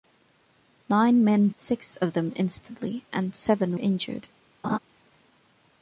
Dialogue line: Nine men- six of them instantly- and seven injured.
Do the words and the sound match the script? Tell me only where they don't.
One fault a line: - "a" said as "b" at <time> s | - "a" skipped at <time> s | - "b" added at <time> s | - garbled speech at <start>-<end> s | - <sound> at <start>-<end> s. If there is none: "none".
- laugh at 4.6-4.8 s